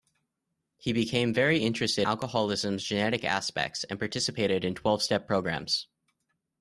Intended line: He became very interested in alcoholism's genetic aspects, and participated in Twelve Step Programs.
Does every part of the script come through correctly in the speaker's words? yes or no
no